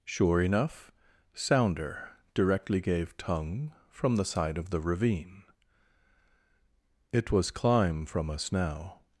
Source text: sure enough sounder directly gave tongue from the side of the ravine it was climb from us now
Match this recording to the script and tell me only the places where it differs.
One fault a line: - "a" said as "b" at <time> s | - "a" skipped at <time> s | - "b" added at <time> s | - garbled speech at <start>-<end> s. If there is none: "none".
none